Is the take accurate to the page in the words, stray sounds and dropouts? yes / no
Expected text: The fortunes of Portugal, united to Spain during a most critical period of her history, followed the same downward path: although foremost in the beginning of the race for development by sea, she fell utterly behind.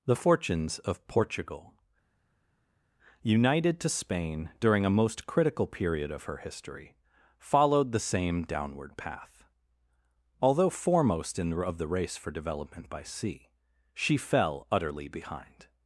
no